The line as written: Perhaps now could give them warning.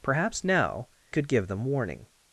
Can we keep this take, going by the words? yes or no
yes